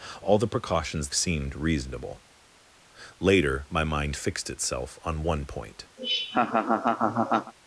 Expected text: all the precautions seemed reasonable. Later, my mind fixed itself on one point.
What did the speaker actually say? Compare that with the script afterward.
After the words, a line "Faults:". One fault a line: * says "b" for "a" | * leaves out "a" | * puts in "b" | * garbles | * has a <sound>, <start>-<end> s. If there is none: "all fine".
all the precautions seemed reasonable. Later, my mind fixed itself on one point.
Faults:
* has a laugh, 6.0-7.5 s